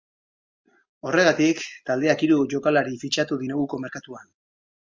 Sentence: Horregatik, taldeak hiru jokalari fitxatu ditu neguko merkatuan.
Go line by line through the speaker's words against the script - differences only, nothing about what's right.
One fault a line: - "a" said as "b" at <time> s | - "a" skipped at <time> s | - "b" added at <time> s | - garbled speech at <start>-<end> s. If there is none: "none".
- "ditu" skipped at 3.4 s